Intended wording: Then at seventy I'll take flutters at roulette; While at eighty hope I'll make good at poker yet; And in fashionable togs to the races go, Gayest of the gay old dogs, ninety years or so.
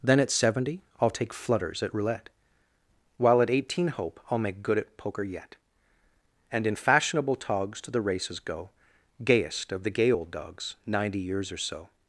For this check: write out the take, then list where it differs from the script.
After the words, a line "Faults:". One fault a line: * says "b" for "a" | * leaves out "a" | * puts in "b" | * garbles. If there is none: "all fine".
Then at seventy I'll take flutters at roulette; While at eighteen hope I'll make good at poker yet; And in fashionable togs to the races go, Gayest of the gay old dogs, ninety years or so.
Faults:
* says "eighteen" for "eighty"